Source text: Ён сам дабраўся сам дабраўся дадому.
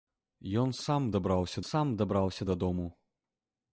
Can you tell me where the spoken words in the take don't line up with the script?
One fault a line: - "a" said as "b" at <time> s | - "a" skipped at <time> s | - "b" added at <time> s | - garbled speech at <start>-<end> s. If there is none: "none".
none